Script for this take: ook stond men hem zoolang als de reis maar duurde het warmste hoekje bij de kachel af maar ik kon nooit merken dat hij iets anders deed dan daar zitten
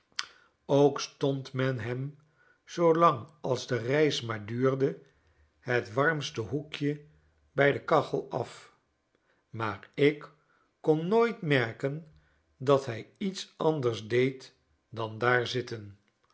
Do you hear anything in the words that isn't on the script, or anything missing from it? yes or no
no